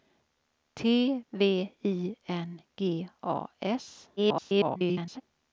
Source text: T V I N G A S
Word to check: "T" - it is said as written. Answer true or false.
true